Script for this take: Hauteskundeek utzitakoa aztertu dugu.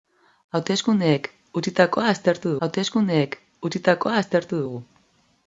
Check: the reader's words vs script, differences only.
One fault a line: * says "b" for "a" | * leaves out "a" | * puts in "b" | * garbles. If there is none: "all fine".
* puts in "hauteskundeek utzitakoa aztertu"